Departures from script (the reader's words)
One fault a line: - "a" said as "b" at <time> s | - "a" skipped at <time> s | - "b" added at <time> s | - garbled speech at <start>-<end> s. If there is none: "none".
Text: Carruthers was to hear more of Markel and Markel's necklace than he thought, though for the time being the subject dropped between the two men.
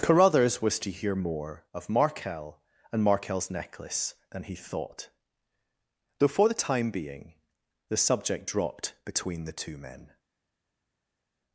none